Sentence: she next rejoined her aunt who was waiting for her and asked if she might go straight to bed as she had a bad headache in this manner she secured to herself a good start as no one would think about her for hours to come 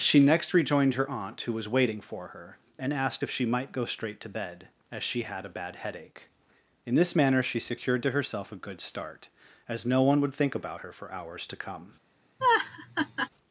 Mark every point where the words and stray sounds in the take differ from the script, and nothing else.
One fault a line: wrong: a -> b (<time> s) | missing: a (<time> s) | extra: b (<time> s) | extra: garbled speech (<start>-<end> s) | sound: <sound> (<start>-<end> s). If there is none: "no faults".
sound: laugh (12.4-13.3 s)